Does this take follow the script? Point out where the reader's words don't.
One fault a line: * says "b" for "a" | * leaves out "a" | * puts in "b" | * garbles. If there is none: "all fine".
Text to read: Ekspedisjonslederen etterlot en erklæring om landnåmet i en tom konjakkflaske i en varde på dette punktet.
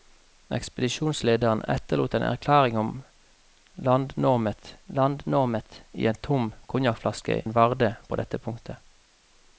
* puts in "landnåmet"
* leaves out "i"